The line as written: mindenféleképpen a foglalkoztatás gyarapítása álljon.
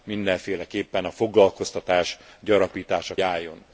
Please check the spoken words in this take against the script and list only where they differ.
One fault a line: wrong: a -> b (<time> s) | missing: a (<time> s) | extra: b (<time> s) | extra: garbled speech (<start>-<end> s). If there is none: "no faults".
no faults